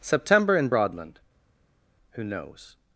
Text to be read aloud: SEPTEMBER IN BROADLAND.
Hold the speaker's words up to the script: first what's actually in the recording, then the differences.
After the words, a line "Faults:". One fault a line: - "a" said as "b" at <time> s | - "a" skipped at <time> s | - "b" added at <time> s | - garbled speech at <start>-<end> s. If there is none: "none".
SEPTEMBER IN BROADLAND. who knows
Faults:
- "who knows" added at 2.1 s